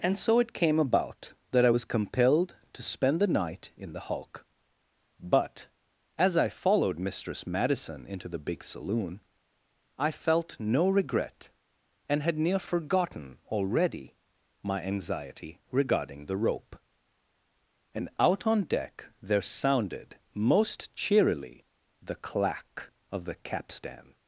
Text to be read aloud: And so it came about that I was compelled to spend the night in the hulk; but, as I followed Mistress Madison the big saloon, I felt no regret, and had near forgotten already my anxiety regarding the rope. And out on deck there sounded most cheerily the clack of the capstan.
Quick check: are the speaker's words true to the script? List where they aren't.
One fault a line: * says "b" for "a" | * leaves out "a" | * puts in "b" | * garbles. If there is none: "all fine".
* puts in "into"